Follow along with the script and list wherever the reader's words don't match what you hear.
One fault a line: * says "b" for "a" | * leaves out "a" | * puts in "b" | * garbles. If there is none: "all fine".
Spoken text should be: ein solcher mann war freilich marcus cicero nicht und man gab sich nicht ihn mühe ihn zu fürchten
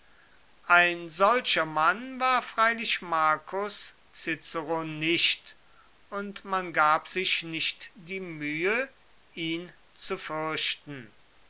* says "die" for "ihn"